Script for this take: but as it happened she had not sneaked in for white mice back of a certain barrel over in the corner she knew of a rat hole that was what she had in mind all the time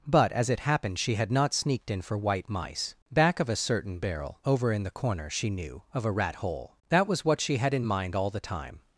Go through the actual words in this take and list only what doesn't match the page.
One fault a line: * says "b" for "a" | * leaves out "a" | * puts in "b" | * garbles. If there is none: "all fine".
all fine